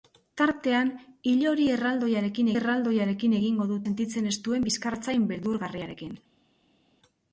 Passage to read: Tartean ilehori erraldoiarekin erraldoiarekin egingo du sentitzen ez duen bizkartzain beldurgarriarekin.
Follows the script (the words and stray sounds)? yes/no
yes